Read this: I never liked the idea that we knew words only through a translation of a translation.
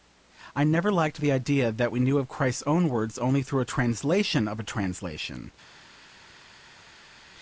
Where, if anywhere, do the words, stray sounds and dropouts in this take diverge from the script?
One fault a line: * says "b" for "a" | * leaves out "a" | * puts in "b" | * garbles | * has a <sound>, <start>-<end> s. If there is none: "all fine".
* puts in "of Christ's own"